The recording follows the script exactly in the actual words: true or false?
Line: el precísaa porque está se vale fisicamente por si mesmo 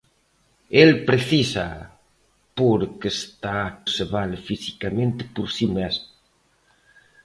true